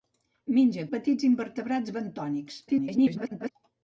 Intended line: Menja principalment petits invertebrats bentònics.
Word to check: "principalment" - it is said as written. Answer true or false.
false